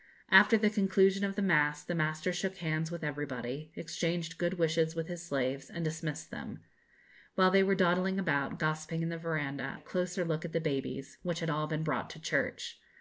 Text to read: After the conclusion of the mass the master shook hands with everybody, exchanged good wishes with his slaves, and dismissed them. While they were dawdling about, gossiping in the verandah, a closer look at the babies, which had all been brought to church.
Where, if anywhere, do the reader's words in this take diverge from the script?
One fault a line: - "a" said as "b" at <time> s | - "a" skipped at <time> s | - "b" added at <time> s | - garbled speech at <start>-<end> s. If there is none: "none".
none